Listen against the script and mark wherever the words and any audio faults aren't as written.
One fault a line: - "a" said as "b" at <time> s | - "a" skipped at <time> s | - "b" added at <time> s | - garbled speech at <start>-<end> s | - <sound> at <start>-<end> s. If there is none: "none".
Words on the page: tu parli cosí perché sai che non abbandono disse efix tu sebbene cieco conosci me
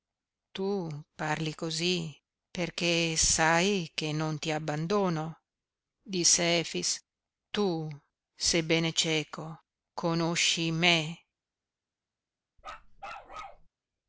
- "ti" added at 4.4 s
- bark at 12.6-13.7 s